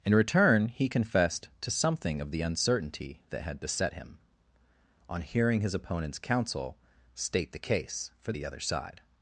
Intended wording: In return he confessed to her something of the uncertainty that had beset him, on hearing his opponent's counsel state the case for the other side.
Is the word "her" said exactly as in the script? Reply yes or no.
no